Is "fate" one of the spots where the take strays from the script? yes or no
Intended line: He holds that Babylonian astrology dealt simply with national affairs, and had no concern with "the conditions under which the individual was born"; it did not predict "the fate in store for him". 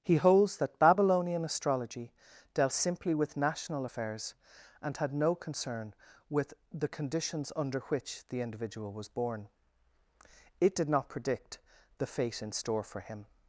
no